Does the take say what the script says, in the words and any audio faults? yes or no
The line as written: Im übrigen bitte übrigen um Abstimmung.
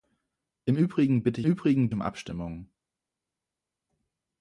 yes